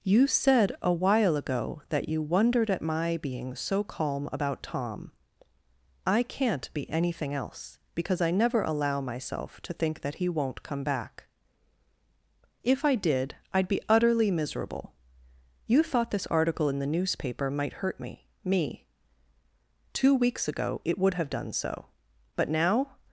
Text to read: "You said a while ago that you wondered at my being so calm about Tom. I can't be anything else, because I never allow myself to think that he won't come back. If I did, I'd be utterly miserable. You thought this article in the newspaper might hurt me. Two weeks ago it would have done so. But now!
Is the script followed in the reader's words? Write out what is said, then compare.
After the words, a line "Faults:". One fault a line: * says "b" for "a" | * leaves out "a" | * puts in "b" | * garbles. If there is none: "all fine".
"You said a while ago that you wondered at my being so calm about Tom. I can't be anything else, because I never allow myself to think that he won't come back. If I did, I'd be utterly miserable. You thought this article in the newspaper might hurt me me. Two weeks ago it would have done so. But now!
Faults:
* puts in "me"